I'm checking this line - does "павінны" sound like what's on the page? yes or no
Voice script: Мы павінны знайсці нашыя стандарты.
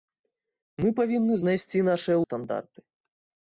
yes